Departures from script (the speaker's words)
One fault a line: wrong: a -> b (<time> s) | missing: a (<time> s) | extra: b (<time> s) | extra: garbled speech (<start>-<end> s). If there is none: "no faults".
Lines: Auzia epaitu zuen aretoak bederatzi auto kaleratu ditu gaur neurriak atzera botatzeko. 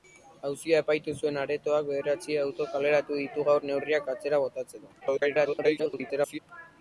extra: garbled speech (5.0-6.4 s)